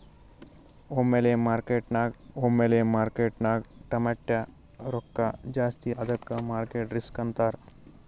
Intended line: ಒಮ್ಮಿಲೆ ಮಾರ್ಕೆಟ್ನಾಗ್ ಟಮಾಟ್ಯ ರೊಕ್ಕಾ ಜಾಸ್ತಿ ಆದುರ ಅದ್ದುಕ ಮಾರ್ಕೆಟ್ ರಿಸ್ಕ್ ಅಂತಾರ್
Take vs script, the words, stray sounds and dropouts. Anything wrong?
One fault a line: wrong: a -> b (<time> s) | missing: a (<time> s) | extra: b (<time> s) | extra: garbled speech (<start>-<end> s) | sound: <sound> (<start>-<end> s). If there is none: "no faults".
extra: ಒಮ್ಮಿಲೆ ಮಾರ್ಕೆಟ್ನಾಗ್ (2.4 s)
missing: ಆದುರ (5.9 s)